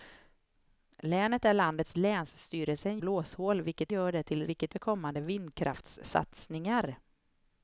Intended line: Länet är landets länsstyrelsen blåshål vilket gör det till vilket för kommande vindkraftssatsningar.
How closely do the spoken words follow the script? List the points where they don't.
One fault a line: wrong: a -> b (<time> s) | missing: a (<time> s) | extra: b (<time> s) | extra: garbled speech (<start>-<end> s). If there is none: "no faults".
no faults